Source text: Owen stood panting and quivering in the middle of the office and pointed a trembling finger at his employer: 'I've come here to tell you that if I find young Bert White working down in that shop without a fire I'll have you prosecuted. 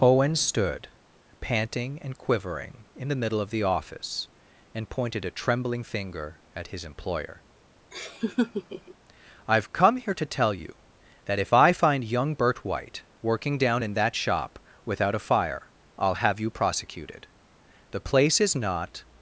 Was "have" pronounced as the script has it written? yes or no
yes